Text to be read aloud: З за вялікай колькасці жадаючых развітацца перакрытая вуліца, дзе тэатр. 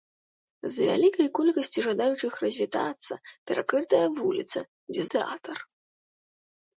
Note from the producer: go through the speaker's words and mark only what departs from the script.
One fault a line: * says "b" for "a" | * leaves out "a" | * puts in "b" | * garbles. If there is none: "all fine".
all fine